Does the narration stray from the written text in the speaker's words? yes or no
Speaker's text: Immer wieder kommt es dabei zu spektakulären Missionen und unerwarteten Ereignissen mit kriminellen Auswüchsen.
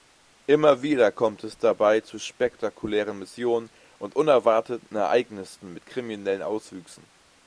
no